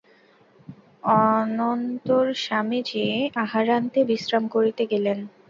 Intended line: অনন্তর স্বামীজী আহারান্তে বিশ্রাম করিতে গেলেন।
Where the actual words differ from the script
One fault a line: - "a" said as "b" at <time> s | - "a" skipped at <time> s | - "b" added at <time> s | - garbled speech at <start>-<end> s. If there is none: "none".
none